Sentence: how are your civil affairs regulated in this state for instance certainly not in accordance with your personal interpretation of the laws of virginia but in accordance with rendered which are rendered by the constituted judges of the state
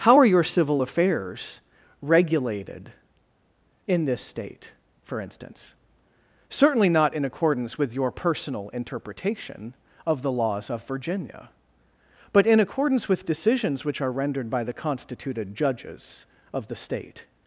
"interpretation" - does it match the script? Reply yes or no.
yes